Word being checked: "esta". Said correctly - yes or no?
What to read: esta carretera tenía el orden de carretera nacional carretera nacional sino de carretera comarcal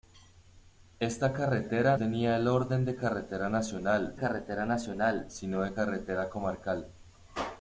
yes